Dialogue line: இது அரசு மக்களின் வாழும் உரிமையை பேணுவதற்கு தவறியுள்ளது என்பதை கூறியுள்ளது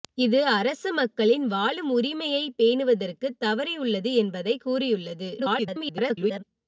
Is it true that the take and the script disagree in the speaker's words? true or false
true